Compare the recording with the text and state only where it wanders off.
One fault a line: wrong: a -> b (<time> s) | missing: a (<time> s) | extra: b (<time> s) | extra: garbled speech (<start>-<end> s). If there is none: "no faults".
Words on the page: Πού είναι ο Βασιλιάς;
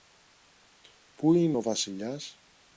no faults